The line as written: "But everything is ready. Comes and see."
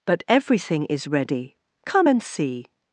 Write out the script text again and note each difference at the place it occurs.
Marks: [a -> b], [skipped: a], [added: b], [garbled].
"But everything is ready. [Comes -> Come] and see."